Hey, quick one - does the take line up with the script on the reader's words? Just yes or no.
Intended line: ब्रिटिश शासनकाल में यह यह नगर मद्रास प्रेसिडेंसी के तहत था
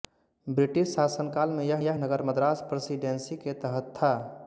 yes